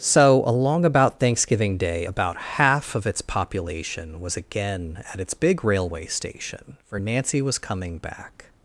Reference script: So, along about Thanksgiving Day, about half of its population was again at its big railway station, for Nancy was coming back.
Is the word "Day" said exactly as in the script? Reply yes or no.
yes